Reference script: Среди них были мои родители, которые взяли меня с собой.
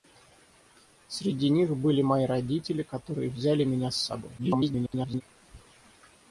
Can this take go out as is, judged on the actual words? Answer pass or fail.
fail